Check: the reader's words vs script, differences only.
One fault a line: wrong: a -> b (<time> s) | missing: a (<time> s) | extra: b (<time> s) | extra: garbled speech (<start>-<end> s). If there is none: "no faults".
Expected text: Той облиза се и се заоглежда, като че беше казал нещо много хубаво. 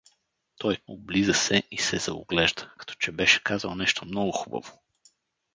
no faults